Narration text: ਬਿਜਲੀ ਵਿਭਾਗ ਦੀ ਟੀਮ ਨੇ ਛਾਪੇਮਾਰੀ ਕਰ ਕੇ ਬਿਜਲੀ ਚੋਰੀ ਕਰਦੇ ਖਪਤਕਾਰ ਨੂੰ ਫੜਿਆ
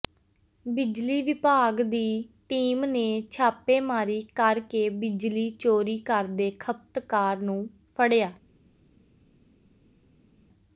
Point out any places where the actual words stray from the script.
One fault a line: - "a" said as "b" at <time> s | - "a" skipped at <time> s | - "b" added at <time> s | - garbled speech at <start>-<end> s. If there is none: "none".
none